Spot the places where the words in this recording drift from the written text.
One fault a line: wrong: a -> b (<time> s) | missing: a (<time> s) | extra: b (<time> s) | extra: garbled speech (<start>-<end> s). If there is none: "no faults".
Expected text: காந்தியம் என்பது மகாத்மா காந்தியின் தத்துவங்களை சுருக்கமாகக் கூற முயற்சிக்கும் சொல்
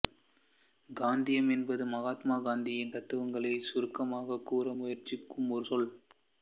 extra: ஒரு (5.5 s)